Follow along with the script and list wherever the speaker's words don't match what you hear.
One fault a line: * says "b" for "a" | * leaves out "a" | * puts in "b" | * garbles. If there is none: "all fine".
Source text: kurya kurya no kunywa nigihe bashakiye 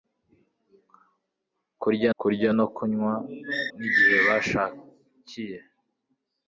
all fine